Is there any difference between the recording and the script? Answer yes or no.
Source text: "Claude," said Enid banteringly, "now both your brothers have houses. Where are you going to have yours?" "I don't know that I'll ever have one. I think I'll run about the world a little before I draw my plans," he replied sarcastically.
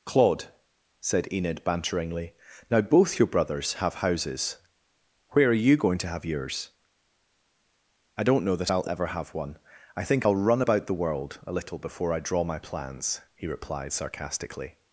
no